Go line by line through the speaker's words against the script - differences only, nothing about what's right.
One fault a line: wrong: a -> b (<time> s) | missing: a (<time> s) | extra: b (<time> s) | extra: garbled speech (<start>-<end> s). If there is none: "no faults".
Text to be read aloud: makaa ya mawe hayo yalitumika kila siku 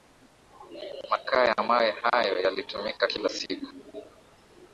no faults